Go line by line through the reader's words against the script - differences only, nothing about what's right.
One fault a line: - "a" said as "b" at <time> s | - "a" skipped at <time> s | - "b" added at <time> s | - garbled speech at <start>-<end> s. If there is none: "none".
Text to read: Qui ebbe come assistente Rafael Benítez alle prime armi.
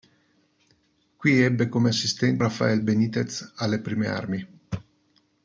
none